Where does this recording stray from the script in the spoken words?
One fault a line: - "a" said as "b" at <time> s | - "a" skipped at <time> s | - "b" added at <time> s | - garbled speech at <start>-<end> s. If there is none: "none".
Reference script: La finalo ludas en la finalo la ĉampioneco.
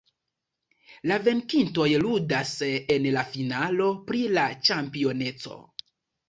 - "finalo" said as "venkintoj" at 1.3 s
- "pri" added at 4.1 s